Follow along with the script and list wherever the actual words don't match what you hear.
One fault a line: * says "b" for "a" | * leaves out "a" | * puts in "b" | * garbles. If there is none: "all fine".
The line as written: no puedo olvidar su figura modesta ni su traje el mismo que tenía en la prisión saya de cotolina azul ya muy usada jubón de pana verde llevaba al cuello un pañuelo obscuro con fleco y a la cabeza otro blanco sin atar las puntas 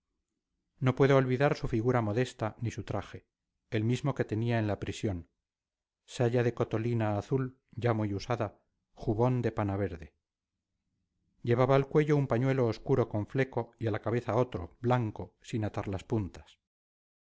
all fine